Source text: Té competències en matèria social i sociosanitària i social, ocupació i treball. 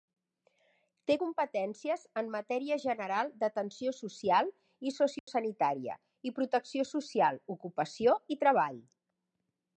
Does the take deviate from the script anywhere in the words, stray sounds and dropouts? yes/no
yes